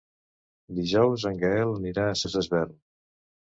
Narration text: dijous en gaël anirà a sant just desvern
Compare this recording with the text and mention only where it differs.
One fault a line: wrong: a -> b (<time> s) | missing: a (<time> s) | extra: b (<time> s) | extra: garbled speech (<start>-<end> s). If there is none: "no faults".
missing: sant (2.2 s)